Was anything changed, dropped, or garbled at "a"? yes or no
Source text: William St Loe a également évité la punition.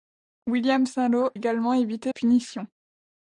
yes